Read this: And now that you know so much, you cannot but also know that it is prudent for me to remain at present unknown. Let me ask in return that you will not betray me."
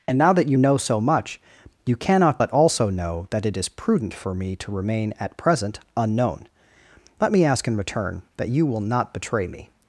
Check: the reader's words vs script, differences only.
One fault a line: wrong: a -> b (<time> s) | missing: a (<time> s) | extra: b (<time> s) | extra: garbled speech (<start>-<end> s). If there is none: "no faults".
no faults